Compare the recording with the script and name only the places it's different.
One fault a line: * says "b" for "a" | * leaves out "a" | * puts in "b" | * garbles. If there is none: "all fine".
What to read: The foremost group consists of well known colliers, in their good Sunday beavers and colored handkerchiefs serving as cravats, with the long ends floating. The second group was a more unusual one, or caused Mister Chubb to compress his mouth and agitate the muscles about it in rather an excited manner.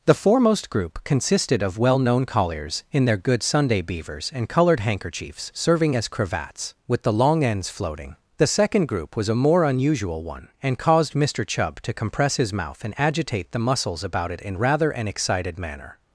* says "consisted" for "consists"
* says "and" for "or"